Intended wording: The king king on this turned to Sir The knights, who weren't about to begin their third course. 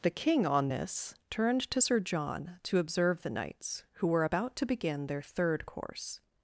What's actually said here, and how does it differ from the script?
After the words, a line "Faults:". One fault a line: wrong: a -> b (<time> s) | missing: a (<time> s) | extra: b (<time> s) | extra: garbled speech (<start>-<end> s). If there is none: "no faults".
The king on this turned to Sir John to observe the knights, who were about to begin their third course.
Faults:
missing: king (0.5 s)
extra: John to observe (2.0 s)
wrong: weren't -> were (4.1 s)